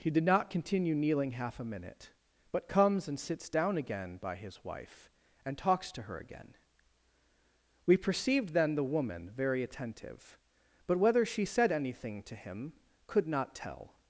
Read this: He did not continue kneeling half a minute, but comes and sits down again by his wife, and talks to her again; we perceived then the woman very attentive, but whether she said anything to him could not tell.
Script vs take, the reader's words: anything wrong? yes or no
no